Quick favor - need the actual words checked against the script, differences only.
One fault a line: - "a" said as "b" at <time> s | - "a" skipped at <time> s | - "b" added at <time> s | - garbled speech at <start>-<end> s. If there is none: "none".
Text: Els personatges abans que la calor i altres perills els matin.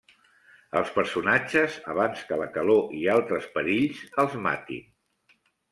none